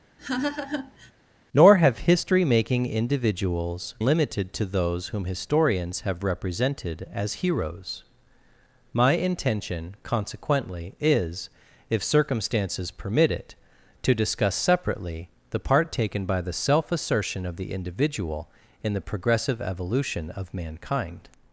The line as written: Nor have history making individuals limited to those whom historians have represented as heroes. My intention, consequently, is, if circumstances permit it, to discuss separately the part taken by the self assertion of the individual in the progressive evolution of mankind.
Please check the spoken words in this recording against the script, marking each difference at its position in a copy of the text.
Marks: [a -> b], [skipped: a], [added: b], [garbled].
Nor have history making individuals limited to those whom historians have represented as heroes. My intention, consequently, is, if circumstances permit it, to discuss separately the part taken by the self assertion of the individual in the progressive evolution of mankind.